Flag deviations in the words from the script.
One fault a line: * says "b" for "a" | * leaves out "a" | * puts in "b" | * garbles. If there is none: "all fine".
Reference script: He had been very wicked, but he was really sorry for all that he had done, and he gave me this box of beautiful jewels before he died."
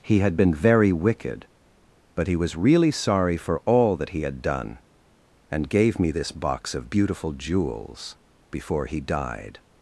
* leaves out "he"